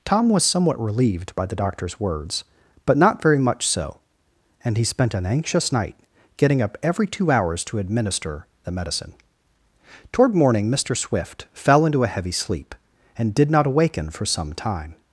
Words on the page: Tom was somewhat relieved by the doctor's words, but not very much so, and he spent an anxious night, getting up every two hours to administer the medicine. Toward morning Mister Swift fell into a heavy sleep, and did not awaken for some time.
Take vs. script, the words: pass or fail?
pass